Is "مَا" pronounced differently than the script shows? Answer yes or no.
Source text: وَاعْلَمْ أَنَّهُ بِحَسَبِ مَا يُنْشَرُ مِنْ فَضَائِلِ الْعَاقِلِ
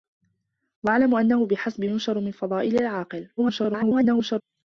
yes